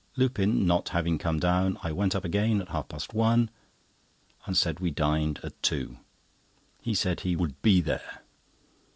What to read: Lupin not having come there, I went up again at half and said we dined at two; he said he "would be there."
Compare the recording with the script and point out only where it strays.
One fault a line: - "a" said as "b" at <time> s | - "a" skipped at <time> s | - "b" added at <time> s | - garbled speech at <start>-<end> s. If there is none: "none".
- "there" said as "down" at 1.4 s
- "past one" added at 2.9 s